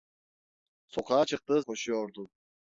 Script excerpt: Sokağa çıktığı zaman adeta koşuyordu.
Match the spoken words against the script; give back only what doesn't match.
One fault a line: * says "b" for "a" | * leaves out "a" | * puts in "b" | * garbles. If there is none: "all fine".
* leaves out "zaman adeta"